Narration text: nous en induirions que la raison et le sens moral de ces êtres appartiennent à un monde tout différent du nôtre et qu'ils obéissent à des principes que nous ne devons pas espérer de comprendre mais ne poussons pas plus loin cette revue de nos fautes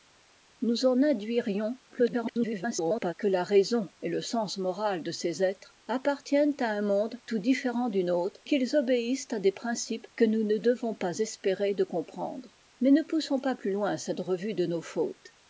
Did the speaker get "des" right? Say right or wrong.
right